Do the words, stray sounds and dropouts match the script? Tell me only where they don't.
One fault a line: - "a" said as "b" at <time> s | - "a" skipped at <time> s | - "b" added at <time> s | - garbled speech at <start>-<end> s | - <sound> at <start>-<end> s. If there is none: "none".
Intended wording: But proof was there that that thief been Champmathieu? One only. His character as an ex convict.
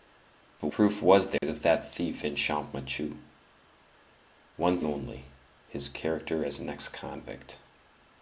- dropout at 1.4-1.4 s